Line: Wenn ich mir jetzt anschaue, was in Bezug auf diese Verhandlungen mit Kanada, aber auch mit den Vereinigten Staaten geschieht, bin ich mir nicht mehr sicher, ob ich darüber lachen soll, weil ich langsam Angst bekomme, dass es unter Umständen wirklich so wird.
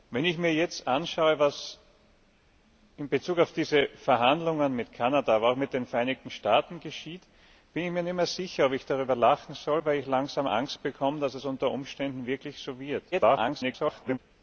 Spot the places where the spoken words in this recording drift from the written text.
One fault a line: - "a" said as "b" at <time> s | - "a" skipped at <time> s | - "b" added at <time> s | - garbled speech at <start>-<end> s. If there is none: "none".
- garbled speech at 13.1-14.2 s